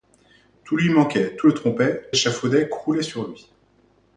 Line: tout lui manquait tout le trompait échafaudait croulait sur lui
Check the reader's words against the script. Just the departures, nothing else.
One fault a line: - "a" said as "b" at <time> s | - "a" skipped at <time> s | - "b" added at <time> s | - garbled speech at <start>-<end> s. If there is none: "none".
none